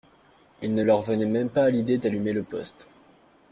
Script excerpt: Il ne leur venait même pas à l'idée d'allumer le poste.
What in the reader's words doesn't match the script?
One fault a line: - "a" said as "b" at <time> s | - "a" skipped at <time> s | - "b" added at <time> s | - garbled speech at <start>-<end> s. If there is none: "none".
none